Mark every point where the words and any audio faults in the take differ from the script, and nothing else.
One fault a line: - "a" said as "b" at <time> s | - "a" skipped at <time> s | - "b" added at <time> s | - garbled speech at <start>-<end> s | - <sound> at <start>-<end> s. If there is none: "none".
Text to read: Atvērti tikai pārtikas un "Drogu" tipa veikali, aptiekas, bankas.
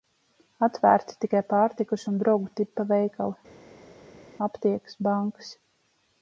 none